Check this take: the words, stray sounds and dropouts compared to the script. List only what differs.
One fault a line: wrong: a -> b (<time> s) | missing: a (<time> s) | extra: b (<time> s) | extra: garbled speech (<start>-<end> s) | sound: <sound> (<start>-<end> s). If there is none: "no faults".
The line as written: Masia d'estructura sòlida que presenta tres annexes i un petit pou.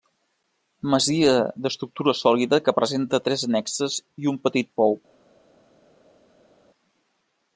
no faults